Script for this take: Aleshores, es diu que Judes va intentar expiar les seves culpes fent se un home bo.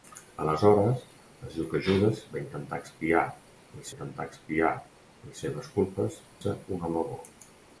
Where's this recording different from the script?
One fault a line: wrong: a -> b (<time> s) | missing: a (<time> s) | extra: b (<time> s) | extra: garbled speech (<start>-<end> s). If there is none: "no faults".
extra: intentar expiar les (3.9 s)
missing: fent (6.2 s)